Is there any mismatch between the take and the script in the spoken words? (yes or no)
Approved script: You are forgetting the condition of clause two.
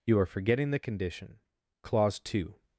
yes